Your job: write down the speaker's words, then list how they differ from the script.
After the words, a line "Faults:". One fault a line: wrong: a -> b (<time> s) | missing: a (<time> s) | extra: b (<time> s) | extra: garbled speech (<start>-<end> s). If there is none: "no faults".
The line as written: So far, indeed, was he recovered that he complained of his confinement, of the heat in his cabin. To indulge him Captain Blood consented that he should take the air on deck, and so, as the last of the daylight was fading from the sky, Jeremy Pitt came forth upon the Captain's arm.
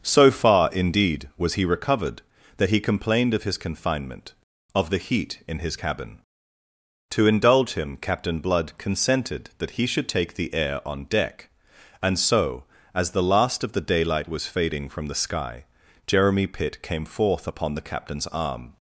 So far, indeed, was he recovered that he complained of his confinement, of the heat in his cabin. To indulge him Captain Blood consented that he should take the air on deck, and so, as the last of the daylight was fading from the sky, Jeremy Pitt came forth upon the Captain's arm.
Faults:
no faults